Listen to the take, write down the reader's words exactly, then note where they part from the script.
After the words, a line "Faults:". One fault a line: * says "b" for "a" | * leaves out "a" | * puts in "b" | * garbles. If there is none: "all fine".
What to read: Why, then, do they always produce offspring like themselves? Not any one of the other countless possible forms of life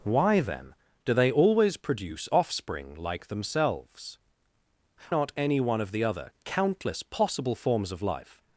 Why, then, do they always produce offspring like themselves? Not any one of the other countless possible forms of life
Faults:
all fine